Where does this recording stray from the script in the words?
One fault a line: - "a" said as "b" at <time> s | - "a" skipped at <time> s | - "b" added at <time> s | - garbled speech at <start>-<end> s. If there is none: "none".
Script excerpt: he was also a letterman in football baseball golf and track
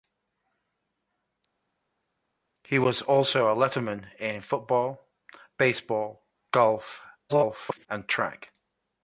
- garbled speech at 7.3-7.9 s